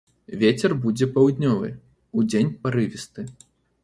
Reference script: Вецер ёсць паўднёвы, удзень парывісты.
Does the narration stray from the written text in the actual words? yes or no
yes